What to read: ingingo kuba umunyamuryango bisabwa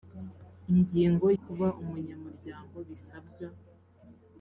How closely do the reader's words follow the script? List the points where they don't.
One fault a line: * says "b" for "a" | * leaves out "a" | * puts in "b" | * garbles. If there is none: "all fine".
all fine